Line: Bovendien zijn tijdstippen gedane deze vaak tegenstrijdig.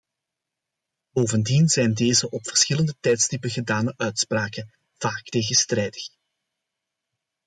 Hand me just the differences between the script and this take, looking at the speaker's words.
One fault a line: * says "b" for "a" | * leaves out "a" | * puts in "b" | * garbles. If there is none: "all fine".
* puts in "deze op verschillende"
* says "uitspraken" for "deze"